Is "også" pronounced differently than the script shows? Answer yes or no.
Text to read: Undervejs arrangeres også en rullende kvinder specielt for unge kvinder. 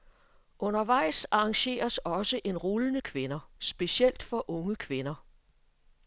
no